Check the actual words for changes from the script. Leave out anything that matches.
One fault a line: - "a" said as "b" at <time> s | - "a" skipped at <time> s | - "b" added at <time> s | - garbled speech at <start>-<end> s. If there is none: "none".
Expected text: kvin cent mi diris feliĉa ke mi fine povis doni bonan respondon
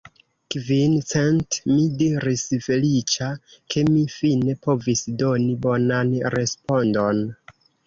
none